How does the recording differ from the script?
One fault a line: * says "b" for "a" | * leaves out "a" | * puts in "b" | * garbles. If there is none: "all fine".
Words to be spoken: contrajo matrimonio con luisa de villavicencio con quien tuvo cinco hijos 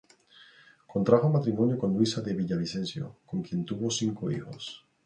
all fine